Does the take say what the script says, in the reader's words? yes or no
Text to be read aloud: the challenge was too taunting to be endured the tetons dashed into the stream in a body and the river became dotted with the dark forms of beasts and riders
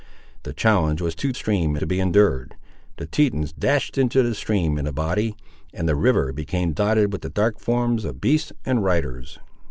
no